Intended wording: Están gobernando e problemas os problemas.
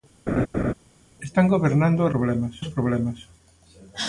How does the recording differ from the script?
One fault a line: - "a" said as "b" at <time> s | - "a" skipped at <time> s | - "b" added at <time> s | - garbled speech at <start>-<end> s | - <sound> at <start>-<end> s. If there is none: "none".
- laugh at 0.3-0.7 s